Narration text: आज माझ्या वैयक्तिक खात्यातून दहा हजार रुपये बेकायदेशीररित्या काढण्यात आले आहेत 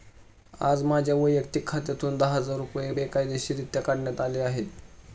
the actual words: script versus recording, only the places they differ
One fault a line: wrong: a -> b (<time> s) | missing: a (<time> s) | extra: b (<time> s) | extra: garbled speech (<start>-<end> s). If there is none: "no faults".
no faults